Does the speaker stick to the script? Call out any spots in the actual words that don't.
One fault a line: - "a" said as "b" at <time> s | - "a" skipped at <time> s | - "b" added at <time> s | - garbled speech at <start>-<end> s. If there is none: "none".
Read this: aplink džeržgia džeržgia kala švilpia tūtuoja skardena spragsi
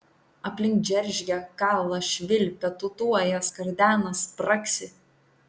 - "džeržgia" skipped at 1.4 s